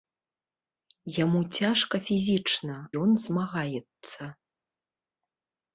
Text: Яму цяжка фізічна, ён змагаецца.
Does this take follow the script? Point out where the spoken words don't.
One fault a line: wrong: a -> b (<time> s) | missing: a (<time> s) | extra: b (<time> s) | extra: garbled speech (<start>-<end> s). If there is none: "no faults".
no faults